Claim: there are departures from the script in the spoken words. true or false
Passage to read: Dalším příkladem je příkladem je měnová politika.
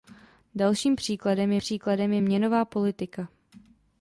false